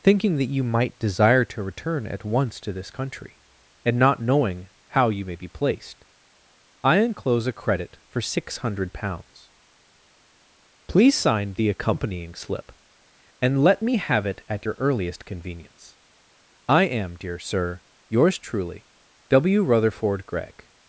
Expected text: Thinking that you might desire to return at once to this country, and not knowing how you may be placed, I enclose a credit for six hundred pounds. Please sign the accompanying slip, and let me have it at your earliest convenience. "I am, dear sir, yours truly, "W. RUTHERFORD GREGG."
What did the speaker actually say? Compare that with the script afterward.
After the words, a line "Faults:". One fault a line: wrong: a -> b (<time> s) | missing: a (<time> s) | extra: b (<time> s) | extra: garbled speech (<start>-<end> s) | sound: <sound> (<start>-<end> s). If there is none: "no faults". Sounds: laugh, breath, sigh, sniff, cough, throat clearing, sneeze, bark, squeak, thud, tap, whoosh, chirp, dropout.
Thinking that you might desire to return at once to this country, and not knowing how you may be placed, I enclose a credit for six hundred pounds. Please sign the accompanying slip, and let me have it at your earliest convenience. "I am, dear sir, yours truly, "W. RUTHERFORD GREGG."
Faults:
no faults